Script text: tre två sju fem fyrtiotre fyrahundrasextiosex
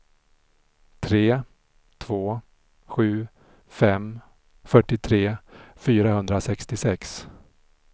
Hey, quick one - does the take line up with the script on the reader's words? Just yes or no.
yes